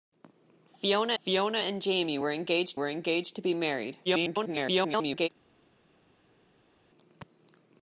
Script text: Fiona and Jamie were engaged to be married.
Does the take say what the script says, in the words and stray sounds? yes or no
no